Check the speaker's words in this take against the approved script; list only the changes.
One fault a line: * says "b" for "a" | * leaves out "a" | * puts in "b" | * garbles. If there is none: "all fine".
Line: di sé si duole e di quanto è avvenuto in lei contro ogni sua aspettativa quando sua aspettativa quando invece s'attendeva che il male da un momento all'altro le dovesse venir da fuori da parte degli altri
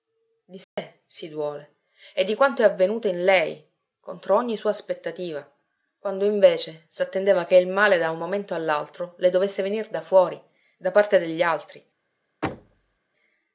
* leaves out "sua aspettativa quando"